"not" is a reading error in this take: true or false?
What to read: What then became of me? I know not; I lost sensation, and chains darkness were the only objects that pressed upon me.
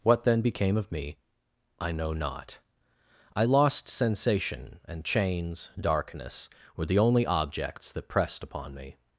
false